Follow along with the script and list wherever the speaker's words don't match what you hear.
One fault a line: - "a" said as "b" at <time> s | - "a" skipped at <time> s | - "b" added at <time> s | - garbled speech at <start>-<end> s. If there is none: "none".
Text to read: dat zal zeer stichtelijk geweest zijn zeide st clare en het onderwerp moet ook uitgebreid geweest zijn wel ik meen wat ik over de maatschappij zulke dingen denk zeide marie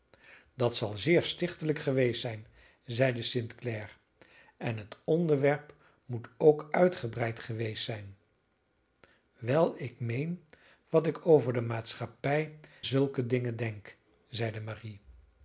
none